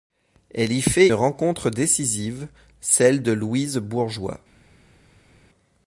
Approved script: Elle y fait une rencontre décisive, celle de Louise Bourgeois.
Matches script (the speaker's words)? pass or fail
fail